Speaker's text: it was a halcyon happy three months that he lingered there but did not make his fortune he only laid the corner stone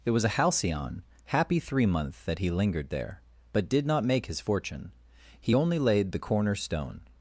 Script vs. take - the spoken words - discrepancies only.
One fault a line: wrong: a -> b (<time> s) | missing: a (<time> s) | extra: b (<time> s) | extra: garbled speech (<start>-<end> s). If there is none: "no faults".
wrong: months -> month (1.9 s)